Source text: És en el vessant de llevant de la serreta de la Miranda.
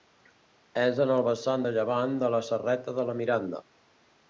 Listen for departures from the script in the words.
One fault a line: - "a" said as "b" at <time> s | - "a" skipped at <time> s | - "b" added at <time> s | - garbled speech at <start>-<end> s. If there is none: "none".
none